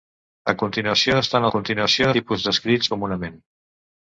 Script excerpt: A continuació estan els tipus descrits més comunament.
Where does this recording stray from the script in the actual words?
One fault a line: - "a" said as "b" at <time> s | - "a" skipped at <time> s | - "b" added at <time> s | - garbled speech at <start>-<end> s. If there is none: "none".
- "els" said as "continuació" at 1.5 s
- "més" skipped at 2.9 s